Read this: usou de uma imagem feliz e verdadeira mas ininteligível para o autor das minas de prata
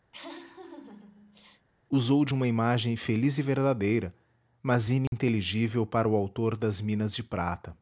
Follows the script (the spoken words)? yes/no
yes